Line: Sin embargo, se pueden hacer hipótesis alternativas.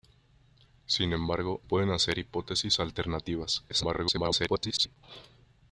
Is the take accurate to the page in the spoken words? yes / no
no